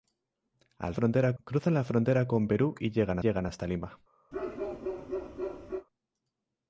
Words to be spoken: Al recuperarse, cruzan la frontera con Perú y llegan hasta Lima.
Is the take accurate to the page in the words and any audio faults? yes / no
no